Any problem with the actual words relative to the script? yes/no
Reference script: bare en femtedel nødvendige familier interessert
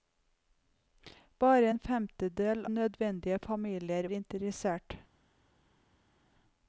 no